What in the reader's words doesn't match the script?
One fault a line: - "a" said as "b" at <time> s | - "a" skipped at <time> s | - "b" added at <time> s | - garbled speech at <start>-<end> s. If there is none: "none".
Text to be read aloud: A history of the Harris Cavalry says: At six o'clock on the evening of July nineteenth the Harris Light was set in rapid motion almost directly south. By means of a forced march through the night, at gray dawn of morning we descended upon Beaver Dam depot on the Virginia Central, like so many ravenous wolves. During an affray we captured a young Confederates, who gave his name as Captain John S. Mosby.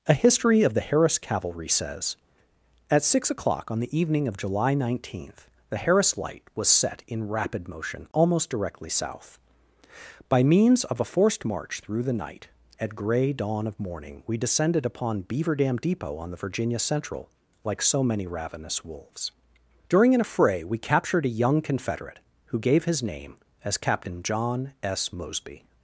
- "Confederates" said as "Confederate" at 21.6 s